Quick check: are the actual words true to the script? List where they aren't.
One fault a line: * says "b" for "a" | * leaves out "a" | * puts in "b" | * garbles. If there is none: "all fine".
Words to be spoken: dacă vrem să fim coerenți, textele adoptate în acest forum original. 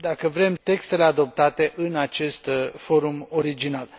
* leaves out "să fim coerenți"